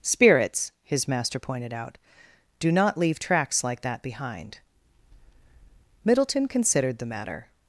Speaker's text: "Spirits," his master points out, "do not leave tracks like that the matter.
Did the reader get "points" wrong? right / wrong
wrong